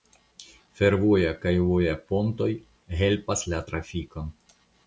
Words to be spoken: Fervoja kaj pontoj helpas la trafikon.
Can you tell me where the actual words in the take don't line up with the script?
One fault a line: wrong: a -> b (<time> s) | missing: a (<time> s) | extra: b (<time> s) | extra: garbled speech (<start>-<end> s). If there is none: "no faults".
extra: voja (1.7 s)